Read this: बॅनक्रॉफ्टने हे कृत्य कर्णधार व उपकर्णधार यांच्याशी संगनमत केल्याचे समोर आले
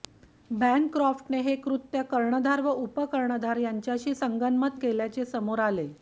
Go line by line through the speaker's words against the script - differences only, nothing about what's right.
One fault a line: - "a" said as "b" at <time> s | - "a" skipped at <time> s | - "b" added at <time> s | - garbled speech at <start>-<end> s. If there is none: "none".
none